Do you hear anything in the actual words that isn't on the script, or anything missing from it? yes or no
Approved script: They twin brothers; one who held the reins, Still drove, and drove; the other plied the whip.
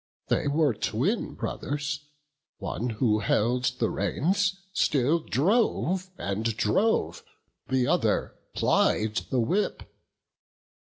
yes